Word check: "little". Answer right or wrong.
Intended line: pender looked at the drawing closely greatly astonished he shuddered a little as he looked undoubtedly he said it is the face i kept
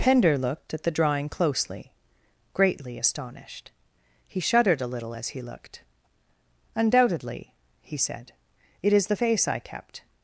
right